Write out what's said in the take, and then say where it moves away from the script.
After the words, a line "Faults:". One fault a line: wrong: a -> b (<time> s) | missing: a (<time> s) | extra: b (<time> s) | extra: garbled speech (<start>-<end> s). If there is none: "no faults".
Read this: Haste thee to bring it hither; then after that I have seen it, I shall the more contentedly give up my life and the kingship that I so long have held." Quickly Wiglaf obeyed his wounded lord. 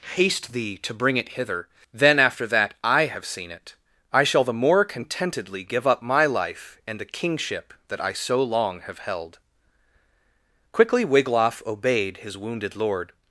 Haste thee to bring it hither; then after that I have seen it, I shall the more contentedly give up my life and the kingship that I so long have held." Quickly Wiglaf obeyed his wounded lord.
Faults:
no faults